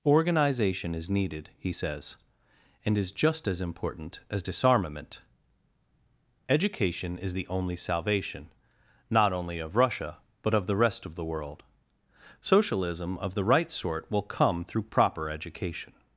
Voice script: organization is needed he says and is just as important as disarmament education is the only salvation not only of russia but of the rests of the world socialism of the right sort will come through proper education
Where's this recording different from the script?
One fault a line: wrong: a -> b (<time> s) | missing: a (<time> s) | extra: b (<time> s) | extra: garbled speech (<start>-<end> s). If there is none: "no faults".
wrong: rests -> rest (10.8 s)